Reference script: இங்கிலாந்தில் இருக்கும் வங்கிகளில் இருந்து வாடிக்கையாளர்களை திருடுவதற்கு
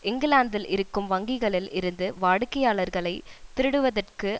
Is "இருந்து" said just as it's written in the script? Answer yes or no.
yes